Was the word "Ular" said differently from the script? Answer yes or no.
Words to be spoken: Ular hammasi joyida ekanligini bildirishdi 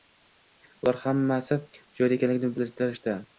no